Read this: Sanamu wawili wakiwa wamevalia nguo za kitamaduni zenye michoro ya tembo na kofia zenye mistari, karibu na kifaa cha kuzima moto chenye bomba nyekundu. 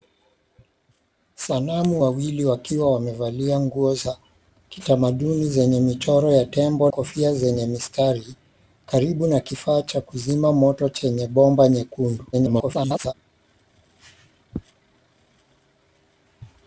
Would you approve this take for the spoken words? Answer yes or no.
no